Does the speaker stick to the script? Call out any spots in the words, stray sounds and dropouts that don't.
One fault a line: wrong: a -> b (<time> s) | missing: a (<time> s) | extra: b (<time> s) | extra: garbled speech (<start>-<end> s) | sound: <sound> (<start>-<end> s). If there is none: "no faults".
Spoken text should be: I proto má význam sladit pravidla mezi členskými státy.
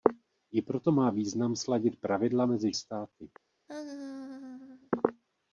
missing: členskými (2.7 s)
sound: laugh (3.7-4.9 s)